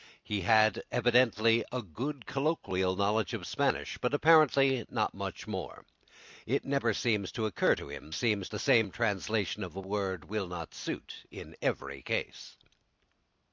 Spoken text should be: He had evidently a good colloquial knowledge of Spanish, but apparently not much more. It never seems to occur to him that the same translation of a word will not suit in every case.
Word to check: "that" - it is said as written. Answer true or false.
false